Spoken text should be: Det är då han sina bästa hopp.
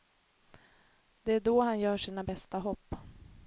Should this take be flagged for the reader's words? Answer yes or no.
yes